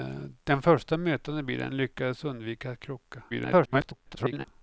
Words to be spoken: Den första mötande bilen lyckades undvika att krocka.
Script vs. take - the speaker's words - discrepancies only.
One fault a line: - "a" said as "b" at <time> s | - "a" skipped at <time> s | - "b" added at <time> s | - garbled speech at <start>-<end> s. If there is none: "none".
- garbled speech at 3.3-4.5 s